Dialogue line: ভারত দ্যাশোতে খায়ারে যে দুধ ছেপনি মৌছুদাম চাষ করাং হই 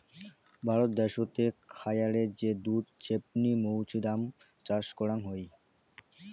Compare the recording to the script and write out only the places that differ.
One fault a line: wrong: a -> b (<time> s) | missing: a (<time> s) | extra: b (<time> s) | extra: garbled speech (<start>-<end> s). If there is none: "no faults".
no faults